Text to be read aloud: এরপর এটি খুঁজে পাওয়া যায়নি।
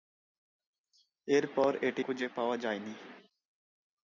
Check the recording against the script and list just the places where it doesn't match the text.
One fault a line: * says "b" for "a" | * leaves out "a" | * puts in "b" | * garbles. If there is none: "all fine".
all fine